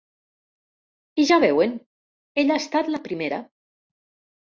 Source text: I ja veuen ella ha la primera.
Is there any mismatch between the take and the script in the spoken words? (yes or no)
yes